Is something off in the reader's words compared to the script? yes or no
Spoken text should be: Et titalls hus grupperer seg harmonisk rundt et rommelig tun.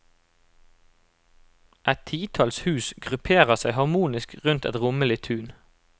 no